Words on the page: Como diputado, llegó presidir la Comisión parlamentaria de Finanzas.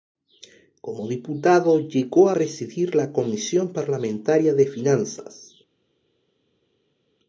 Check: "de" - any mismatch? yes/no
no